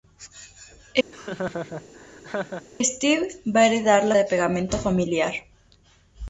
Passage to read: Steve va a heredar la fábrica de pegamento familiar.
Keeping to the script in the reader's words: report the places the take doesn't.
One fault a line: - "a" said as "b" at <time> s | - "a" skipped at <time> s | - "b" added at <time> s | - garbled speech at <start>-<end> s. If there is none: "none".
- "fábrica" skipped at 4.1 s